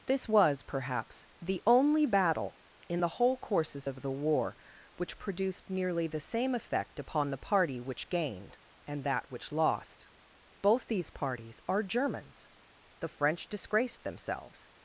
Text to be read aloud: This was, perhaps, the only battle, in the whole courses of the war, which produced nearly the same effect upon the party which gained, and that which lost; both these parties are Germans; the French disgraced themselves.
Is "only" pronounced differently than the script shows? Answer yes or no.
no